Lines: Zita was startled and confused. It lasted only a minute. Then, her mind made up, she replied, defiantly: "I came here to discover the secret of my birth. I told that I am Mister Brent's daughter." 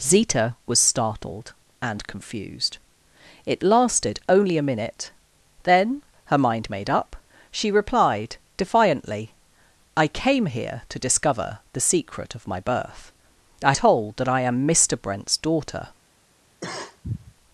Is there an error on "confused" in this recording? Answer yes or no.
no